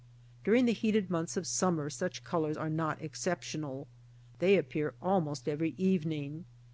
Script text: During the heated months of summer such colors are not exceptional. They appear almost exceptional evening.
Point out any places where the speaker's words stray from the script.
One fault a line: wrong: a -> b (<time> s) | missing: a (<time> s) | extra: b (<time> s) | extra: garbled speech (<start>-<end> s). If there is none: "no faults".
wrong: exceptional -> every (5.5 s)